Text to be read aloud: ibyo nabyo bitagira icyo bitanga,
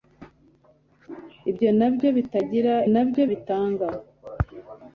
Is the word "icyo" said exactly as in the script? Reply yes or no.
no